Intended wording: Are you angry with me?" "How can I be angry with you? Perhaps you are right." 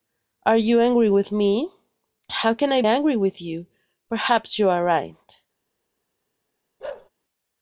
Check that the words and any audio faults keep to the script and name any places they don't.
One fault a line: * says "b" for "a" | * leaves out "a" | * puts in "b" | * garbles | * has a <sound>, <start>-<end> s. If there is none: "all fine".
* leaves out "be"
* has a bark, 6.8-7.1 s